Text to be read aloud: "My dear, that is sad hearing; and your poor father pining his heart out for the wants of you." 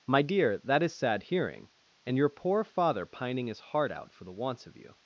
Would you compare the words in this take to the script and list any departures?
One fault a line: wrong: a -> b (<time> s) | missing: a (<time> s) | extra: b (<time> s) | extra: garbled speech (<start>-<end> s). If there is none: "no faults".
no faults